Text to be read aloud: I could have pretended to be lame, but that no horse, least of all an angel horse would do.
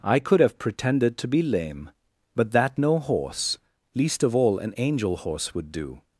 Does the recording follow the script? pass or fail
pass